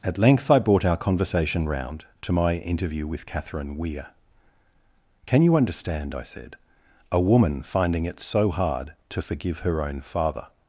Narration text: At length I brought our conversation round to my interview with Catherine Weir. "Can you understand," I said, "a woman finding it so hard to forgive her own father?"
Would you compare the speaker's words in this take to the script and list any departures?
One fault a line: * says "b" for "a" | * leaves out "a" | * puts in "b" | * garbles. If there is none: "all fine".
all fine